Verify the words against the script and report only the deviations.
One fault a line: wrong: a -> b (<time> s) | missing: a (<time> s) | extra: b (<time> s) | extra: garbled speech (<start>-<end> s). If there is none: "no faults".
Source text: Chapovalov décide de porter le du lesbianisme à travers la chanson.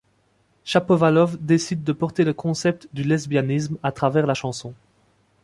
extra: concept (2.3 s)